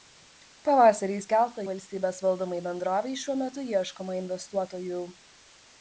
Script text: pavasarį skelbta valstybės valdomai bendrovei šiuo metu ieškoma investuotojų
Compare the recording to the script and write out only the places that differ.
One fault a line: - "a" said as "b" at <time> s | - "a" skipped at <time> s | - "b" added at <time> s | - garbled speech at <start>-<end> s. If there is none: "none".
none